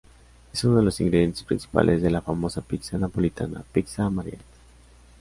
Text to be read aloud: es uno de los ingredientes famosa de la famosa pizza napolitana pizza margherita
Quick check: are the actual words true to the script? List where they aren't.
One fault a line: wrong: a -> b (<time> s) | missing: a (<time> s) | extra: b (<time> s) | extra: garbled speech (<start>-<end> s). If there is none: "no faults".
wrong: famosa -> principales (1.4 s)